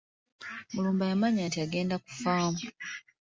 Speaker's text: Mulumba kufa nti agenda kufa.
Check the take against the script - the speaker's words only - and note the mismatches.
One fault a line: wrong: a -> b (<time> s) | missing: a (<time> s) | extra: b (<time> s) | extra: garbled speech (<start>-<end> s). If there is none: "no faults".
wrong: kufa -> yamanya (1.1 s)